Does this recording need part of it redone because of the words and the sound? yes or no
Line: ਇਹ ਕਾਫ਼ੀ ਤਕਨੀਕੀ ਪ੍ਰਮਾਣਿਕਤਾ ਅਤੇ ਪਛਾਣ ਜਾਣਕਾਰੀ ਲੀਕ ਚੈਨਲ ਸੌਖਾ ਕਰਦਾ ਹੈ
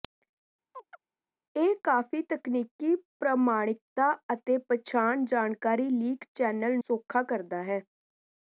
yes